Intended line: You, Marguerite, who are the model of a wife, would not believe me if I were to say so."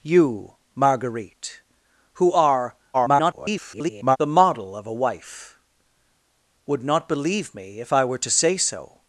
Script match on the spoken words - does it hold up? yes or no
no